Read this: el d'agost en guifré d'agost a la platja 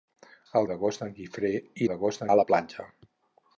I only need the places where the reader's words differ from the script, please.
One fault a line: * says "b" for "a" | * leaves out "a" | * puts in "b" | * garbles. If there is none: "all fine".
all fine